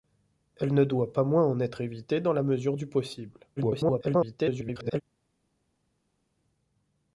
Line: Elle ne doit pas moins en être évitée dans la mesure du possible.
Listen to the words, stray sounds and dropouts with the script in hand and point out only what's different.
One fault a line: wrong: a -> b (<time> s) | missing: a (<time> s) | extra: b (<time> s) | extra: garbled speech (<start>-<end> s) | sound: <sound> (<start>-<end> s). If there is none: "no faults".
extra: garbled speech (3.6-5.0 s)